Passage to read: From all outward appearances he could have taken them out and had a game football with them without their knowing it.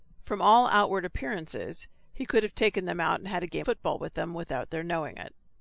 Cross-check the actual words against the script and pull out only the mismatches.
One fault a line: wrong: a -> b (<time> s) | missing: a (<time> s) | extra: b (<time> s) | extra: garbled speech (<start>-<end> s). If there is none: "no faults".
no faults